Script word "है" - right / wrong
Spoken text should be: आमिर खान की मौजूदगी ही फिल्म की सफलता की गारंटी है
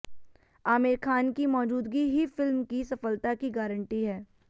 right